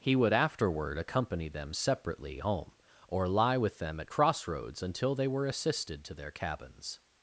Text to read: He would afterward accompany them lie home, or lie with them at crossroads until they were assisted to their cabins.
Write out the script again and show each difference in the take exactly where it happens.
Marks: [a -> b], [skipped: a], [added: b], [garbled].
He would afterward accompany them [lie -> separately] home, or lie with them at crossroads until they were assisted to their cabins.